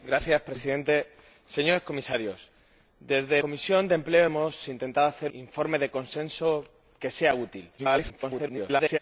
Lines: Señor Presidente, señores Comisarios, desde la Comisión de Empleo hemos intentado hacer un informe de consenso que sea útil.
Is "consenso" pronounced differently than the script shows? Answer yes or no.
no